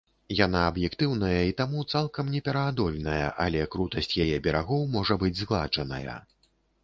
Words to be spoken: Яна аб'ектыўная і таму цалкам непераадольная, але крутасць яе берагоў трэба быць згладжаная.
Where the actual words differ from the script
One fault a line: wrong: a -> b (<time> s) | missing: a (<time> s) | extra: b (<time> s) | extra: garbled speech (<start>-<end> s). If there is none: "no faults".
wrong: трэба -> можа (5.0 s)